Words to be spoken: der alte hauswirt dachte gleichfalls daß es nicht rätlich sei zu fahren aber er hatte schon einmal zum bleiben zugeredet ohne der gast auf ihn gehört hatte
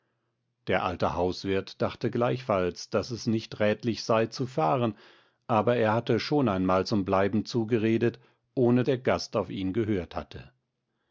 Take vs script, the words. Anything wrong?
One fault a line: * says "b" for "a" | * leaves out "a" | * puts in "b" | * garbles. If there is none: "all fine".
all fine